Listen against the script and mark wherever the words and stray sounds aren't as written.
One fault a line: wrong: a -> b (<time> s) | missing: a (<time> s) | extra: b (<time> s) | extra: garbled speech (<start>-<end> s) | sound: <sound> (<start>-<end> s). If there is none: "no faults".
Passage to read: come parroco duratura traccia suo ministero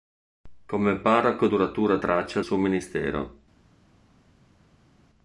no faults